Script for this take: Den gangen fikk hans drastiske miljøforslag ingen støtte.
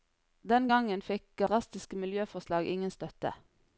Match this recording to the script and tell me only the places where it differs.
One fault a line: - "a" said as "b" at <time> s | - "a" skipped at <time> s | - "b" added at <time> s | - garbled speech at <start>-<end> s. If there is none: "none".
- "hans" skipped at 1.4 s